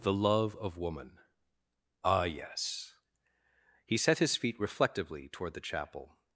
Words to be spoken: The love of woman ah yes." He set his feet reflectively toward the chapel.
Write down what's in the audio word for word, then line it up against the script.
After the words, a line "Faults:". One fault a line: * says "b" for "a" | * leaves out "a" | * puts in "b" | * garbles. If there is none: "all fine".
The love of woman ah yes." He set his feet reflectively toward the chapel.
Faults:
all fine